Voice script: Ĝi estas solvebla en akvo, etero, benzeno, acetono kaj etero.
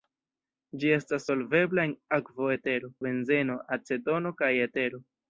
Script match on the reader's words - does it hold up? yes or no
yes